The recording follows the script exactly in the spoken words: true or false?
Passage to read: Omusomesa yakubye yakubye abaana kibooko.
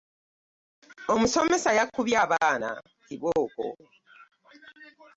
false